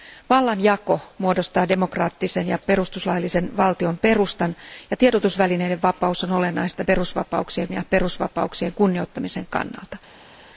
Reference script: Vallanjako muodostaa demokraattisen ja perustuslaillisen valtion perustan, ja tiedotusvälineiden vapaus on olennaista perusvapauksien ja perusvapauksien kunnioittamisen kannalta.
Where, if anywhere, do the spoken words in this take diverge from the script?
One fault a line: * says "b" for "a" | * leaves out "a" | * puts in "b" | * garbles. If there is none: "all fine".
all fine